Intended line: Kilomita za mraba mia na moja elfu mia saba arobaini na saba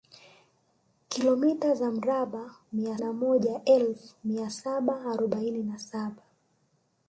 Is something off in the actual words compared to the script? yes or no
no